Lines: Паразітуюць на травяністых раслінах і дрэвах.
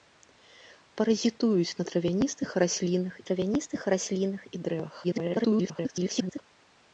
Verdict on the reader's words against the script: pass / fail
fail